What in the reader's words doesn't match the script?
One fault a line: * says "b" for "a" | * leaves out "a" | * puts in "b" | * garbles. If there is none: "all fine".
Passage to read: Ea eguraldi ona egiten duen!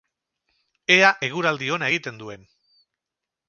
all fine